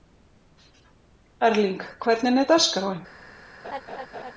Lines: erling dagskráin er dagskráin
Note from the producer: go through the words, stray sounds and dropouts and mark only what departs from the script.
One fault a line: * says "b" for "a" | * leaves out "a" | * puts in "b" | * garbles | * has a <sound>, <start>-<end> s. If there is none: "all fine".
* says "hvernig" for "dagskráin"
* has a laugh, 3.6-4.3 s